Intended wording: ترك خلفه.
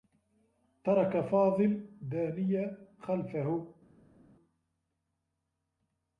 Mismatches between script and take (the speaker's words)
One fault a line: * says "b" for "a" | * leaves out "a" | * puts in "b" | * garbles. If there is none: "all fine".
* puts in "فاضل دانية"